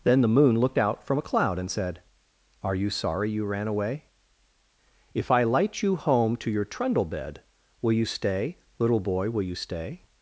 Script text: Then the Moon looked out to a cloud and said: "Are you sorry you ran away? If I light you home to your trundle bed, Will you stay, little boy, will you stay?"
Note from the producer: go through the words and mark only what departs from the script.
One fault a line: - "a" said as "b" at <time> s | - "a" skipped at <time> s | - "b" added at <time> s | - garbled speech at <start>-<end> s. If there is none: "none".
- "to" said as "from" at 1.0 s